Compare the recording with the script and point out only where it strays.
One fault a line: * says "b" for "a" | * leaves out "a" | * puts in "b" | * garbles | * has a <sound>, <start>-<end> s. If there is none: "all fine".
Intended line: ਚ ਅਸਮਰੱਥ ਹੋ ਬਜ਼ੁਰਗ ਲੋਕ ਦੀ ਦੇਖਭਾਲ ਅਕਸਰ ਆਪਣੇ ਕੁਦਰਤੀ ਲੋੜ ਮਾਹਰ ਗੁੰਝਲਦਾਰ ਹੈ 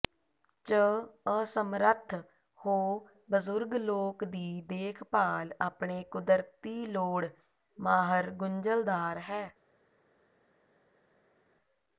* leaves out "ਅਕਸਰ"